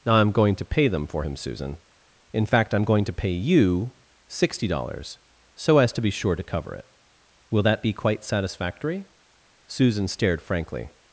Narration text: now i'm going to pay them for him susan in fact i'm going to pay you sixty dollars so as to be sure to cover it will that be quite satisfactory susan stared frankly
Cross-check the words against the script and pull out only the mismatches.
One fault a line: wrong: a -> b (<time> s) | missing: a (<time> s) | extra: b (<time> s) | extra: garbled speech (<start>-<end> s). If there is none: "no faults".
no faults